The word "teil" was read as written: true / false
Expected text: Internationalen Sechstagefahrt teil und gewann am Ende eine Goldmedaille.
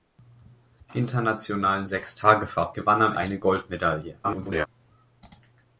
false